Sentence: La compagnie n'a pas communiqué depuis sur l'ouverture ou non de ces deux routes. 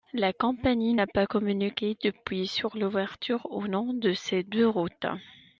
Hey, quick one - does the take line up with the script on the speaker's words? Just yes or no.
yes